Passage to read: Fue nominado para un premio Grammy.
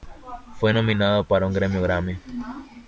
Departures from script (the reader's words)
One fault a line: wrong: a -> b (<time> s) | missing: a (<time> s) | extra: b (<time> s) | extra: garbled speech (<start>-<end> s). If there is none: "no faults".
no faults